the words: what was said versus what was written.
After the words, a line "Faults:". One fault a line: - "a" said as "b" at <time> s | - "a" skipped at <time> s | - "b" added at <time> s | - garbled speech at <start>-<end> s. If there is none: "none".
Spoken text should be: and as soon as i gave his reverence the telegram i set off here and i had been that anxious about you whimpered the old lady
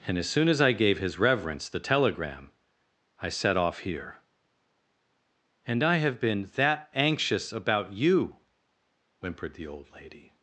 and as soon as i gave his reverence the telegram i set off here and i have been that anxious about you whimpered the old lady
Faults:
- "had" said as "have" at 6.0 s